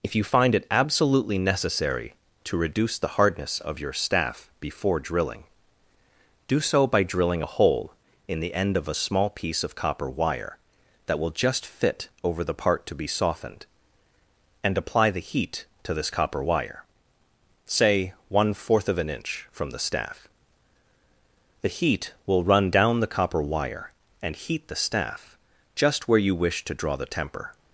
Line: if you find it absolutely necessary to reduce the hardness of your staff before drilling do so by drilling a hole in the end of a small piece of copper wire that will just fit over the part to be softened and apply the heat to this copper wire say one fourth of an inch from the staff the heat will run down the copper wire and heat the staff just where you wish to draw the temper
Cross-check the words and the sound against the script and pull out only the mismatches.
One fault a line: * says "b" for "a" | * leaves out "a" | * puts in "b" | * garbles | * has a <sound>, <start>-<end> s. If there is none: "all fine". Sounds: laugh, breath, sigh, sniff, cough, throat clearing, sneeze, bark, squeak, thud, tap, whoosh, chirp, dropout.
all fine